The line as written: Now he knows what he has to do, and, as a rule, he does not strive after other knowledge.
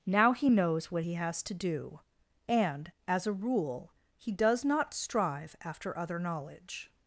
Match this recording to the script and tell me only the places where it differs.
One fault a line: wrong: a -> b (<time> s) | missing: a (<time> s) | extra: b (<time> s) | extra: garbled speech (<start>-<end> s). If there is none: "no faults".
no faults